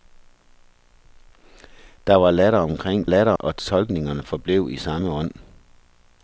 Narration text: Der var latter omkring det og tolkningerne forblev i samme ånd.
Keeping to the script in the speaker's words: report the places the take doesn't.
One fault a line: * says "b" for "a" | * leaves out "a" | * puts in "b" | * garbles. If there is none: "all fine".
* says "latter" for "det"